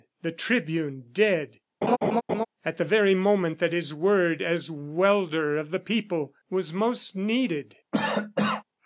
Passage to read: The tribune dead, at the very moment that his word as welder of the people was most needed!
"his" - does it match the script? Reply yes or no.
yes